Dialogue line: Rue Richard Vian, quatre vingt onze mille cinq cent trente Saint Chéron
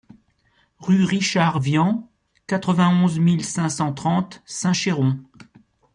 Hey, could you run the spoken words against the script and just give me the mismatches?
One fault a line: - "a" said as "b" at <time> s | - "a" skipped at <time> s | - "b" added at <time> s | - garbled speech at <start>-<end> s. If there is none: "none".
none